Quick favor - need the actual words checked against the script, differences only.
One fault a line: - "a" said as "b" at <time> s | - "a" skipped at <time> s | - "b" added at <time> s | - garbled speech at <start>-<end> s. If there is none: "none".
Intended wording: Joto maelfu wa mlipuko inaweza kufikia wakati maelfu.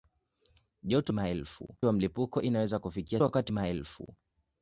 none